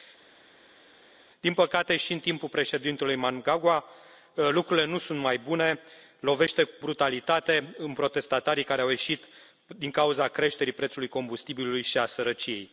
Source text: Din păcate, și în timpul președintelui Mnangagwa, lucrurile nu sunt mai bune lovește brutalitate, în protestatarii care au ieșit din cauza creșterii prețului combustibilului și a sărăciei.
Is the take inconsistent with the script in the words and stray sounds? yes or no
no